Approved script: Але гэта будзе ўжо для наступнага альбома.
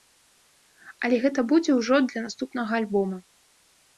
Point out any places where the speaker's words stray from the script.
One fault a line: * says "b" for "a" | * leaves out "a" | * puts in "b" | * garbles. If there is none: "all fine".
all fine